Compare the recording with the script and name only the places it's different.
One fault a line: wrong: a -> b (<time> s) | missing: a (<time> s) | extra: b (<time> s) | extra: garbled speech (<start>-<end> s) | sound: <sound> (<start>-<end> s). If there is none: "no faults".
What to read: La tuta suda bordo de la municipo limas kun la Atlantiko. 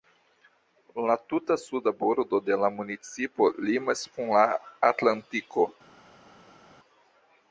no faults